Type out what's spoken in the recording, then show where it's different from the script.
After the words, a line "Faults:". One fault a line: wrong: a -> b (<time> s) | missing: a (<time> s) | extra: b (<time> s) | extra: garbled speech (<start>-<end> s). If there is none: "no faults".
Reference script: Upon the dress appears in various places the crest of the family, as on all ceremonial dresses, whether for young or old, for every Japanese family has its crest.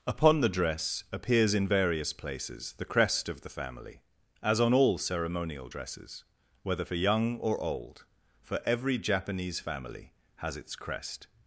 Upon the dress appears in various places the crest of the family, as on all ceremonial dresses, whether for young or old, for every Japanese family has its crest.
Faults:
no faults